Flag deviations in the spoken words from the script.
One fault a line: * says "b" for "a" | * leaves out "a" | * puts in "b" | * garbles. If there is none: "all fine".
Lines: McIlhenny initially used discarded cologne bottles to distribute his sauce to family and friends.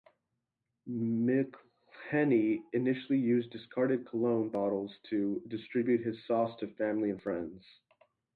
all fine